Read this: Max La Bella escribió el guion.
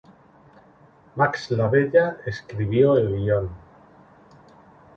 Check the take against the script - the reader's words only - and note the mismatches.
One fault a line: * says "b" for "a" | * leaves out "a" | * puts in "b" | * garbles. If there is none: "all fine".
all fine